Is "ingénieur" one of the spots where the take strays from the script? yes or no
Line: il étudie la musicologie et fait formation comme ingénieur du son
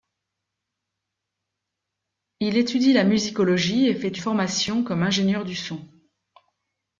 no